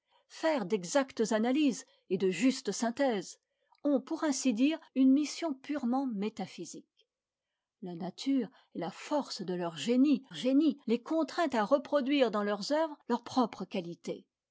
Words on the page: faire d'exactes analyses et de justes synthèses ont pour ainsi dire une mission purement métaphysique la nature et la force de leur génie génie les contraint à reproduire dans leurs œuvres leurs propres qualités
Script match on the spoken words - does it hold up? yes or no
yes